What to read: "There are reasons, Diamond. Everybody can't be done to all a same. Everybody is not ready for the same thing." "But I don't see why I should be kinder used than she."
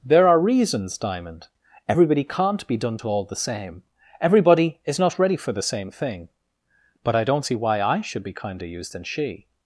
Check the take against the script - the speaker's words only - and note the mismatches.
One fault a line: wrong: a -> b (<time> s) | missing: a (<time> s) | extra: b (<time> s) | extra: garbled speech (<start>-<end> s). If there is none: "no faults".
wrong: a -> the (3.2 s)